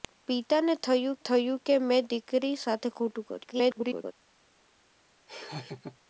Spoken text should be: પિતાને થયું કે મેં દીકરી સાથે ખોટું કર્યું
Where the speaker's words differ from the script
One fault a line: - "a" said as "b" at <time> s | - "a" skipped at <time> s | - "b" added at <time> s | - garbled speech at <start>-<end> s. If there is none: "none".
- "થયું" added at 1.2 s
- garbled speech at 3.4-4.1 s